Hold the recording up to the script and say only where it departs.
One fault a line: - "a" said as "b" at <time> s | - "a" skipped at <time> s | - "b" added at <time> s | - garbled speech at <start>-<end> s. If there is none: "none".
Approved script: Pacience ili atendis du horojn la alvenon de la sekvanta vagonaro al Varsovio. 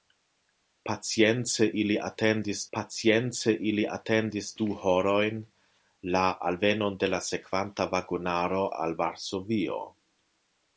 - "pacience ili atendis" added at 2.8 s